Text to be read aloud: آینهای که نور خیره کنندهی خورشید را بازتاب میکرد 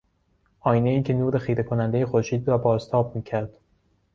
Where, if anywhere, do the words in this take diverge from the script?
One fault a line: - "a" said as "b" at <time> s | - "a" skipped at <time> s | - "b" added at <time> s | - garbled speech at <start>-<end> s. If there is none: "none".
none